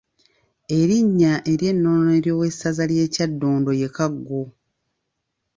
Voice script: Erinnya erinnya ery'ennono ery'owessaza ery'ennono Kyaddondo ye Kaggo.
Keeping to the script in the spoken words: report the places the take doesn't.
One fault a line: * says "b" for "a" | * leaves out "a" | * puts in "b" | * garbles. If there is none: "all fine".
* leaves out "erinnya"
* says "ly'e" for "ery'ennono"